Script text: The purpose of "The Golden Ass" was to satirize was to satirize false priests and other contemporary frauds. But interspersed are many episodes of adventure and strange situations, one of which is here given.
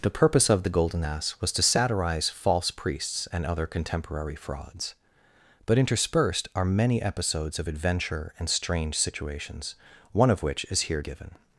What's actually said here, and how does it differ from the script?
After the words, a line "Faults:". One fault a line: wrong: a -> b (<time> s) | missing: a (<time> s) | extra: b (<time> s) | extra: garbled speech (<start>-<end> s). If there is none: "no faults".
The purpose of "The Golden Ass" was to satirize false priests and other contemporary frauds. But interspersed are many episodes of adventure and strange situations, one of which is here given.
Faults:
missing: was to satirize (2.3 s)